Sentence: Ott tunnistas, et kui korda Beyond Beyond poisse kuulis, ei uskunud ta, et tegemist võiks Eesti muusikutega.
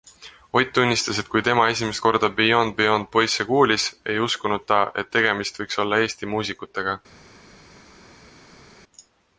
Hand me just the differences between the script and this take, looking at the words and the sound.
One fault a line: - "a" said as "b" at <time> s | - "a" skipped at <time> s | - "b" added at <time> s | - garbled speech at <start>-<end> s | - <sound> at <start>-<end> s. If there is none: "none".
- "tema esimest" added at 1.5 s
- "olla" added at 5.9 s